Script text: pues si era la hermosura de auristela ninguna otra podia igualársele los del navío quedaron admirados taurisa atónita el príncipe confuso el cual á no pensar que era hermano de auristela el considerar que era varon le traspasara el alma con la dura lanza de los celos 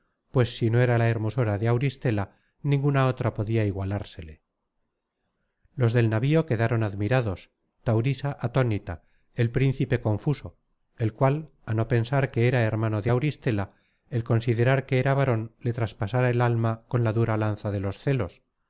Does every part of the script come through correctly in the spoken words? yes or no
no